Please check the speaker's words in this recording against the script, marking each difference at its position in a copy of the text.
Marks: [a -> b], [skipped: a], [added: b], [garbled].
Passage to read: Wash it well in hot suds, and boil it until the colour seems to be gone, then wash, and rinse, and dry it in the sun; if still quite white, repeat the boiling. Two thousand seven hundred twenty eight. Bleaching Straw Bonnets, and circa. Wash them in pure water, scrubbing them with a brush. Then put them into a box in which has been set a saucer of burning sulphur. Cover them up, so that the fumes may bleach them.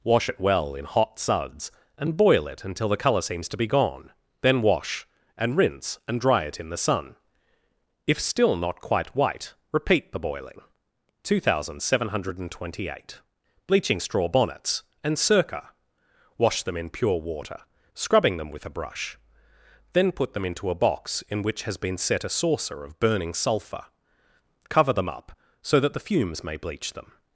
Wash it well in hot suds, and boil it until the colour seems to be gone, then wash, and rinse, and dry it in the sun; if still [added: not] quite white, repeat the boiling. Two thousand seven hundred twenty eight. Bleaching Straw Bonnets, and circa. Wash them in pure water, scrubbing them with a brush. Then put them into a box in which has been set a saucer of burning sulphur. Cover them up, so that the fumes may bleach them.